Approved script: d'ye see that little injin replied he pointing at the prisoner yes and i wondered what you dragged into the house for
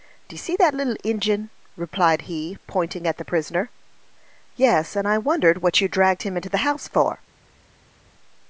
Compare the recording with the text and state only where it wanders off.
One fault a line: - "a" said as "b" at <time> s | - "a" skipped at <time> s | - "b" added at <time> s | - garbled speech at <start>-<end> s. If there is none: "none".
- "him" added at 6.2 s